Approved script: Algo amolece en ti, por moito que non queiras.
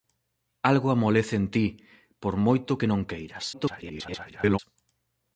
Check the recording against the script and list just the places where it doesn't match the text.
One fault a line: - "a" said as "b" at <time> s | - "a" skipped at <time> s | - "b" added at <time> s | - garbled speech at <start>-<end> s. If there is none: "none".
- garbled speech at 3.5-4.6 s